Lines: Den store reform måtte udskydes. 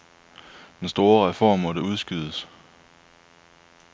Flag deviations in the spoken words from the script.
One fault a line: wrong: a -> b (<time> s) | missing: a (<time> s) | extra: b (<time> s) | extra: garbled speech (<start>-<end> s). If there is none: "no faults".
no faults